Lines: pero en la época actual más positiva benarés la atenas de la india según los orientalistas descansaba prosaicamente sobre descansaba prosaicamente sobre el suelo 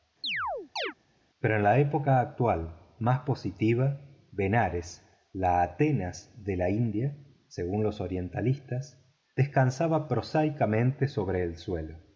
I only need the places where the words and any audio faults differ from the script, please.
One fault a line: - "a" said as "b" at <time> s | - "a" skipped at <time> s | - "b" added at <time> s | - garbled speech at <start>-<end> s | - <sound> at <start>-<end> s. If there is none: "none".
- chirp at 0.2-0.9 s
- "descansaba prosaicamente sobre" skipped at 11.4 s